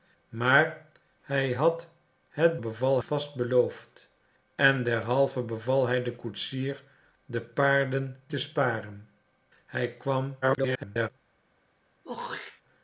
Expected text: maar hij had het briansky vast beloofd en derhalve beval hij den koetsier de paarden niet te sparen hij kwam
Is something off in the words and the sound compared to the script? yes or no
yes